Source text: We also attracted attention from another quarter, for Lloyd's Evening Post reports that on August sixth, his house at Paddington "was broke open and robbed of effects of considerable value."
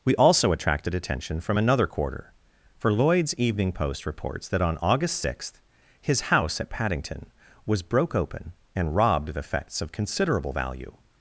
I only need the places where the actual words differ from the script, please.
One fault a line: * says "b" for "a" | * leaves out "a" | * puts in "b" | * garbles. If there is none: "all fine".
all fine